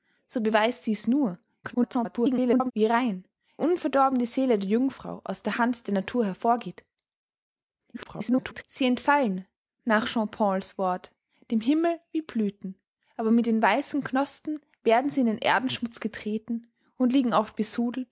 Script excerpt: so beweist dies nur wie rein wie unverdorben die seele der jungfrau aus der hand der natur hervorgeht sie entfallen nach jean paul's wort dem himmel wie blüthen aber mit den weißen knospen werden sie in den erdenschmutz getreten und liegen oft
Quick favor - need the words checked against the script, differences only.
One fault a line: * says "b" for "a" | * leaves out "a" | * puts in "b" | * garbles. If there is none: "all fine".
* garbles
* leaves out "wie"
* garbles